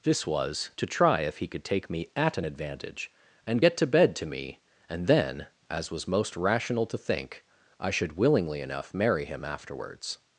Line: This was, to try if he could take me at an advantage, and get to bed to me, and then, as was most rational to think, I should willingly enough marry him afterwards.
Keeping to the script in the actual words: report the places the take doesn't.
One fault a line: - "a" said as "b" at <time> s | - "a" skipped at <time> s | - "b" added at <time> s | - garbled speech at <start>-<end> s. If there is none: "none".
none